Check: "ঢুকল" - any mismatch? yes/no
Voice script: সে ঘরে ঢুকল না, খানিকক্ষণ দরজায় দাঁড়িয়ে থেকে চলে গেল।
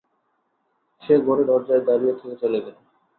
yes